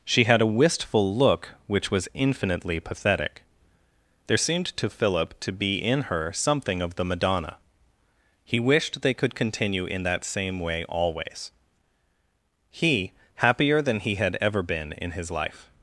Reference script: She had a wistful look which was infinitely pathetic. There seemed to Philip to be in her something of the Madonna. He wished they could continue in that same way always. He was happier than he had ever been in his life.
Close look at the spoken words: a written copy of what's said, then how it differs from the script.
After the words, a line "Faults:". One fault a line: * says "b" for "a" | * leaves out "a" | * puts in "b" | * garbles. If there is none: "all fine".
She had a wistful look which was infinitely pathetic. There seemed to Philip to be in her something of the Madonna. He wished they could continue in that same way always. He happier than he had ever been in his life.
Faults:
* leaves out "was"